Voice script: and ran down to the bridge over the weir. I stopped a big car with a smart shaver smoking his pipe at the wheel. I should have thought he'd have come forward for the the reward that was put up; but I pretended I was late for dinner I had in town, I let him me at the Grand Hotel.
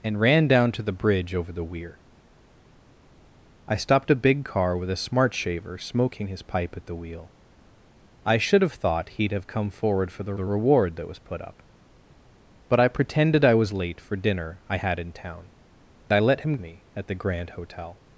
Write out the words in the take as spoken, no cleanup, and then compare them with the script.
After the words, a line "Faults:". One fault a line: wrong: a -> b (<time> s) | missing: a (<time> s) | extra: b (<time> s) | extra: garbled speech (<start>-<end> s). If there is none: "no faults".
and ran down to the bridge over the weir. I stopped a big car with a smart shaver smoking his pipe at the wheel. I should have thought he'd have come forward for the the reward that was put up; but I pretended I was late for dinner I had in town, I let him me at the Grand Hotel.
Faults:
no faults